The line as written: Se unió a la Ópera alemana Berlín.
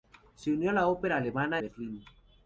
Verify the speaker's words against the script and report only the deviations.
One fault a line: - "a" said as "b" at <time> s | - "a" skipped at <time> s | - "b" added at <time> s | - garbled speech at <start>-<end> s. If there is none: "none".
none